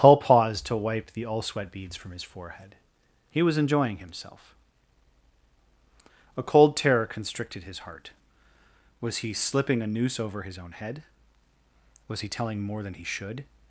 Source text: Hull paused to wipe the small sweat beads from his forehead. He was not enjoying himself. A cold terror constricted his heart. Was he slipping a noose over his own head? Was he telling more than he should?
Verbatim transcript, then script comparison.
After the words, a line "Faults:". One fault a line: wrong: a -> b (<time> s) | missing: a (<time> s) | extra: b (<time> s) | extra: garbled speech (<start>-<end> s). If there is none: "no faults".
Hull paused to wipe the all sweat beads from his forehead. He was enjoying himself. A cold terror constricted his heart. Was he slipping a noose over his own head? Was he telling more than he should?
Faults:
wrong: small -> all (1.3 s)
missing: not (3.6 s)